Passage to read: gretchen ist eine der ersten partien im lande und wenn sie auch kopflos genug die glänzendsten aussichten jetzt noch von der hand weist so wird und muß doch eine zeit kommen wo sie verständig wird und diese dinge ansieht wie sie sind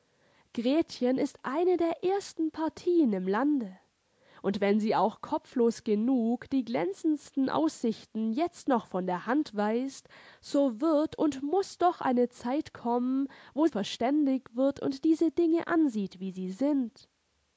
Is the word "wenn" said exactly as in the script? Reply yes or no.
yes